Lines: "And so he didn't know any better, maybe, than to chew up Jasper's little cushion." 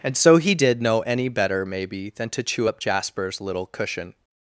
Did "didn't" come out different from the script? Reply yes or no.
yes